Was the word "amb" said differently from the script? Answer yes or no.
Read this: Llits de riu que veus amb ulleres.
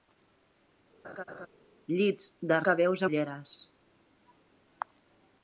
yes